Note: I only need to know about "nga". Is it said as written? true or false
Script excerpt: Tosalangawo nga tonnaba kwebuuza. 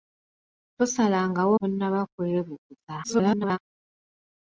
false